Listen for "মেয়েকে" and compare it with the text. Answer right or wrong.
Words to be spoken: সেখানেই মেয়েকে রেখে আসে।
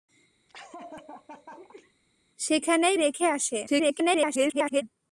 wrong